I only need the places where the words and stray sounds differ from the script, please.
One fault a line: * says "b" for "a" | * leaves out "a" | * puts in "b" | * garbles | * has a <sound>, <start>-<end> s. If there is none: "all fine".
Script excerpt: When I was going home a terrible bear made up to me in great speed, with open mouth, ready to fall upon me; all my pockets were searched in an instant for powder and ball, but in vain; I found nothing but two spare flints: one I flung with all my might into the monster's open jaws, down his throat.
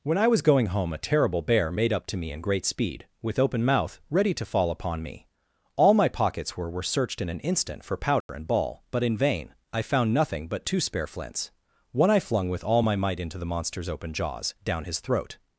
* puts in "were"
* has a dropout, 8.2-8.3 s